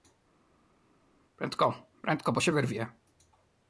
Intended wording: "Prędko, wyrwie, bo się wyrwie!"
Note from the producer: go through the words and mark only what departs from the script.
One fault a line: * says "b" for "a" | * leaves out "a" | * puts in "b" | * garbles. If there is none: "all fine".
* says "prędko" for "wyrwie"